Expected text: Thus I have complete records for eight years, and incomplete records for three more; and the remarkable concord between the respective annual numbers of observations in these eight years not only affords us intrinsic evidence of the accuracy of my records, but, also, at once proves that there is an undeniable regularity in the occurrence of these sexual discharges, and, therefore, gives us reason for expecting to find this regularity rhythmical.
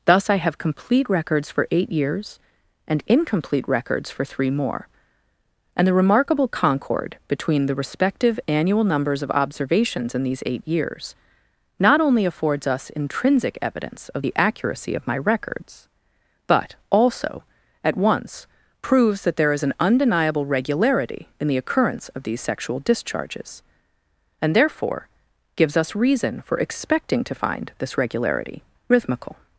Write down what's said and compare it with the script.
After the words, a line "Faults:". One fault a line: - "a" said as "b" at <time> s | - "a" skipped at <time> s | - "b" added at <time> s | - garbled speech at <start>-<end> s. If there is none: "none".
Thus I have complete records for eight years, and incomplete records for three more; and the remarkable concord between the respective annual numbers of observations in these eight years not only affords us intrinsic evidence of the accuracy of my records, but, also, at once proves that there is an undeniable regularity in the occurrence of these sexual discharges, and, therefore, gives us reason for expecting to find this regularity rhythmical.
Faults:
none